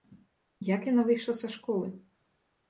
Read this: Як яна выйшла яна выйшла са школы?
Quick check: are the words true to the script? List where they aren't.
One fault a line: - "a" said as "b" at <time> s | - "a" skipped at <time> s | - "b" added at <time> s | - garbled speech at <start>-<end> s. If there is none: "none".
- "яна выйшла" skipped at 1.4 s